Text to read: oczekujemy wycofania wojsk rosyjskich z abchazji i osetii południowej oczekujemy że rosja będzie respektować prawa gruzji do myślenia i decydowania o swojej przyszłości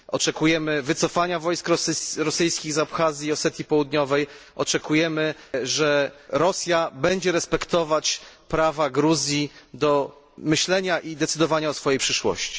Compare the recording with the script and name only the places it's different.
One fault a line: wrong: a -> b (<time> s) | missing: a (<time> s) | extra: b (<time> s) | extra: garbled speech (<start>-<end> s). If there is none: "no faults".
no faults